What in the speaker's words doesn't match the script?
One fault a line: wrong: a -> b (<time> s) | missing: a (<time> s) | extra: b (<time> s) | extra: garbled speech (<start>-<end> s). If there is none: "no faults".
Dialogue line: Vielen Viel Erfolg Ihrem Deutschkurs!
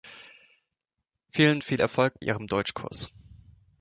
no faults